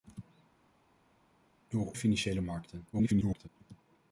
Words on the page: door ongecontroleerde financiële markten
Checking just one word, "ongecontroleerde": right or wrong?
wrong